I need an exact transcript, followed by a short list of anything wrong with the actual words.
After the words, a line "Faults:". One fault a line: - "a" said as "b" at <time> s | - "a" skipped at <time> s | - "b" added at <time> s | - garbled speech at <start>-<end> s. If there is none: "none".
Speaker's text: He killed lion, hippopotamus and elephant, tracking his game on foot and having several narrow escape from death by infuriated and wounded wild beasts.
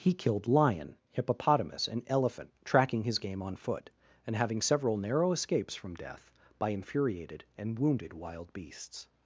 He killed lion, hippopotamus and elephant, tracking his game on foot and having several narrow escapes from death by infuriated and wounded wild beasts.
Faults:
- "escape" said as "escapes" at 5.3 s